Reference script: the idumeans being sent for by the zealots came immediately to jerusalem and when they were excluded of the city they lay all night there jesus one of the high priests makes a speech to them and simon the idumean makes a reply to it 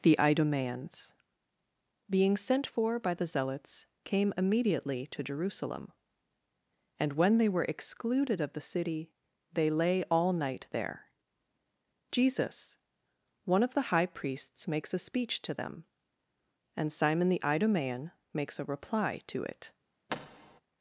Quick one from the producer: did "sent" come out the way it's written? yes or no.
yes